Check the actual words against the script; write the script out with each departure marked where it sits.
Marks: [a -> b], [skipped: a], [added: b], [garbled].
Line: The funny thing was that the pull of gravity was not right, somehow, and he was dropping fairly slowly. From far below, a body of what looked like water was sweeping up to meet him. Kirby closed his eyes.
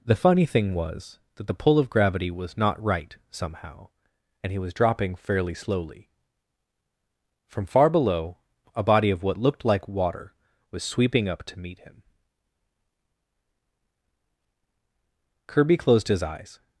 The funny thing was that the pull of gravity was not right, somehow, and he was dropping fairly slowly. From far below, a body of what looked like water was sweeping up to meet him. Kirby closed his eyes.